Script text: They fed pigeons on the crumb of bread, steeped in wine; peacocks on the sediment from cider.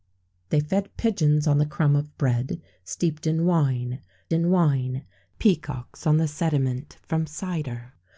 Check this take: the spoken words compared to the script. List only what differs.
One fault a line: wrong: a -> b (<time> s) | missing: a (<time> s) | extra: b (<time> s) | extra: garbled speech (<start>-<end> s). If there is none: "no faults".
extra: in wine (4.3 s)